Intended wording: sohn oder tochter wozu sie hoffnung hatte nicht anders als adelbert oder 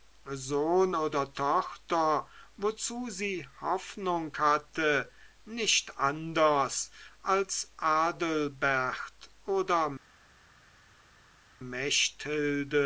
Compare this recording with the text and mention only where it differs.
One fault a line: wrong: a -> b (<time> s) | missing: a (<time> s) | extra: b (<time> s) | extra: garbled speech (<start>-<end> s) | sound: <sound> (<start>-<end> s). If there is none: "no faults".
no faults